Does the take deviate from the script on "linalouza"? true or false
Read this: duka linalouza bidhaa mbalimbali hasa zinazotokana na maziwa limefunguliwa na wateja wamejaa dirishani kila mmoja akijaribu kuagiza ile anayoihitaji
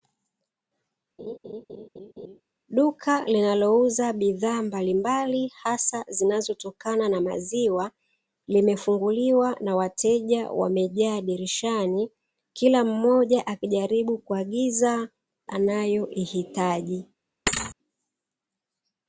false